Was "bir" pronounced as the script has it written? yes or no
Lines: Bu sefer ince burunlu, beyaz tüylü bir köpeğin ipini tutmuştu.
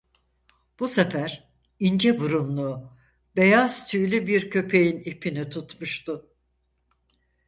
yes